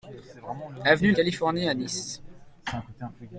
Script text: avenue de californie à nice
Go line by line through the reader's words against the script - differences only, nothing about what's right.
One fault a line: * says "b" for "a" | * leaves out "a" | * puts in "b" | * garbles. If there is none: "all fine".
all fine